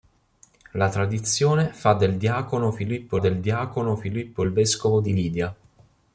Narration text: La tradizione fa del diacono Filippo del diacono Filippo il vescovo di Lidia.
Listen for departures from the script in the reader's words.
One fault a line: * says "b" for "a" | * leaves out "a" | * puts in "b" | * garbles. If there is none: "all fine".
all fine